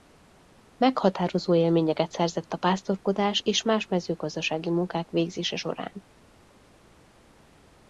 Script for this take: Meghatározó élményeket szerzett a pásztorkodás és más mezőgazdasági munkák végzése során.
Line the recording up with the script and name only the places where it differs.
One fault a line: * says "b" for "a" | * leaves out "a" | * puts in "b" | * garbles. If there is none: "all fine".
all fine